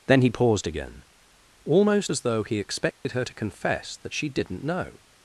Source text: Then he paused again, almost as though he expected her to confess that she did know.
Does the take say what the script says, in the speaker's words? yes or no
no